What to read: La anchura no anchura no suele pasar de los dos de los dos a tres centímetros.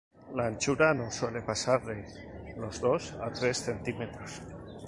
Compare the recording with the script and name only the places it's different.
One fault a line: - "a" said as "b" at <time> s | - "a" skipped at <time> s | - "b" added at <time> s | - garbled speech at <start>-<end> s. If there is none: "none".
- "anchura no" skipped at 1.1 s
- "de los dos" skipped at 3.1 s